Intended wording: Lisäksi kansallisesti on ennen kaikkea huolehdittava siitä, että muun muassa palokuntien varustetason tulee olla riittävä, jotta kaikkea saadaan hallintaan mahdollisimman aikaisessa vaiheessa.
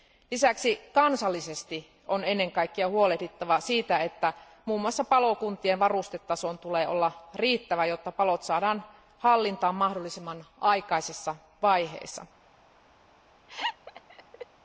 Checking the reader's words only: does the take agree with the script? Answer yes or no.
no